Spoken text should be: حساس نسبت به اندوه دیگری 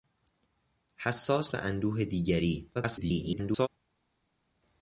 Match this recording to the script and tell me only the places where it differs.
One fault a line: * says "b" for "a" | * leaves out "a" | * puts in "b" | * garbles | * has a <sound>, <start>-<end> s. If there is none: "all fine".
* leaves out "نسبت"
* garbles